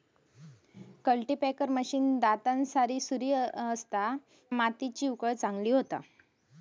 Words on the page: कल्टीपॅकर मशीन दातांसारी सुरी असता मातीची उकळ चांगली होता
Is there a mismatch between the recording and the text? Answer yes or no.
no